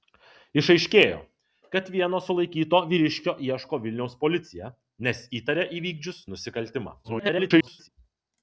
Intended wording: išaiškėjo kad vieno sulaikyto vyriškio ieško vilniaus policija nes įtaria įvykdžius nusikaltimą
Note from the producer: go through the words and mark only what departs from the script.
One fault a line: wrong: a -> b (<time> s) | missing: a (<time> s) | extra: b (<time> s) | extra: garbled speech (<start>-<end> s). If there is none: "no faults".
extra: garbled speech (7.0-7.9 s)